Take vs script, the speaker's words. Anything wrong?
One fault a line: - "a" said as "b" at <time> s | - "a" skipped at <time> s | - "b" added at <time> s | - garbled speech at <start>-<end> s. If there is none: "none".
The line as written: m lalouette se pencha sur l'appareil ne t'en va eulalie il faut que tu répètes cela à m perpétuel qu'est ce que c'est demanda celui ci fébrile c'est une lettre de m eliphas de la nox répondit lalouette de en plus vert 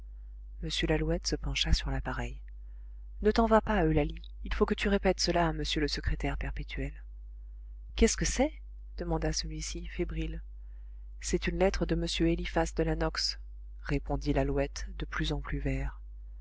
- "pas" added at 3.6 s
- "le secrétaire" added at 5.8 s
- "plus" added at 15.0 s